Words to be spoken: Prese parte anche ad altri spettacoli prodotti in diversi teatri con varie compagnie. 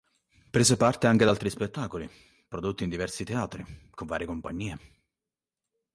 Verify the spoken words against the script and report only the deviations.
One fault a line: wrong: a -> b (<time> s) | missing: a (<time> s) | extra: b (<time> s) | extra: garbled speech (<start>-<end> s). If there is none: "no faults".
no faults